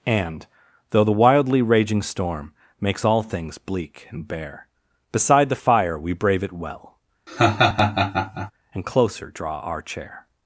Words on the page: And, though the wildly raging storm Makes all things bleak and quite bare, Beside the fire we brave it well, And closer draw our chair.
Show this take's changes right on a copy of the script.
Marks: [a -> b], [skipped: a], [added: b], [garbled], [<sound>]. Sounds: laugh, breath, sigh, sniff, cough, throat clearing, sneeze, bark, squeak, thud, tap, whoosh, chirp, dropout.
And, though the wildly raging storm Makes all things bleak and [skipped: quite] bare, Beside the fire we brave it well, [laugh] And closer draw our chair.